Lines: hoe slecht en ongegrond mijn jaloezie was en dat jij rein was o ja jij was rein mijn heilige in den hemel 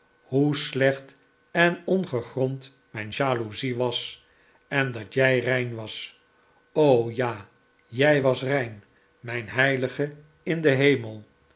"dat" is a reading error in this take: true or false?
false